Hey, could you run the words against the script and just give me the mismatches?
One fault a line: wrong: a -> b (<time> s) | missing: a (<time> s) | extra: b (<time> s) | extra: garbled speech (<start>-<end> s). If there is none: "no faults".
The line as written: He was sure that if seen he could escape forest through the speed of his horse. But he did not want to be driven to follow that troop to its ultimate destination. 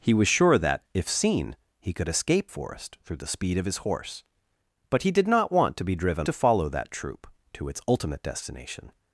no faults